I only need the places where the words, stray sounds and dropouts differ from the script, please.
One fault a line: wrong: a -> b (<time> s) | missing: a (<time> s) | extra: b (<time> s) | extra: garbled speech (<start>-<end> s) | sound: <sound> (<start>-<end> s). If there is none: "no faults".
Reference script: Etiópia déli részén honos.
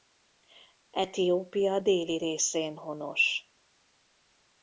no faults